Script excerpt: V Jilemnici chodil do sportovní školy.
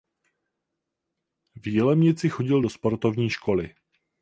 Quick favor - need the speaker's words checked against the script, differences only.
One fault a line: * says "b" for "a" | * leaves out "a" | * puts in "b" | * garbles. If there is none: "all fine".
all fine